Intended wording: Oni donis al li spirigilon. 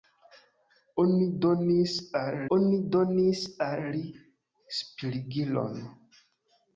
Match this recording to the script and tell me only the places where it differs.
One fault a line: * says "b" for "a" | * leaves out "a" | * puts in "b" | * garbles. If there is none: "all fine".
* puts in "oni donis al"